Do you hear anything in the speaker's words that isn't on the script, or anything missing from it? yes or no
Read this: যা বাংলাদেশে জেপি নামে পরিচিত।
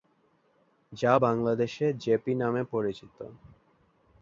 no